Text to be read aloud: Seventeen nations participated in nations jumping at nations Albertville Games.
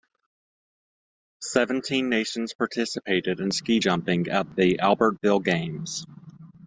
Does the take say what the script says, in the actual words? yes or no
no